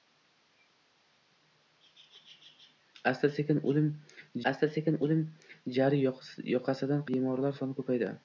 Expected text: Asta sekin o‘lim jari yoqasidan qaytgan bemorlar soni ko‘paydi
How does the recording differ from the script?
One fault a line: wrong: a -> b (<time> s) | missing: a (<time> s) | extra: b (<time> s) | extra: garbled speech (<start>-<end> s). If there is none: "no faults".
extra: asta sekin o‘lim (4.5 s)
missing: qaytgan (7.1 s)